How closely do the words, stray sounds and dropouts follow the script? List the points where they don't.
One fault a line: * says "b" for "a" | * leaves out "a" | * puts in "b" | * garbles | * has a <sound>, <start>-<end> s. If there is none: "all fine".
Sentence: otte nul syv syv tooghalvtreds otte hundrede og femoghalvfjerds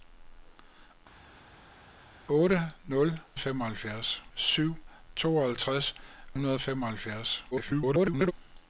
* says "femoghalvfjerds" for "syv"
* leaves out "otte"
* garbles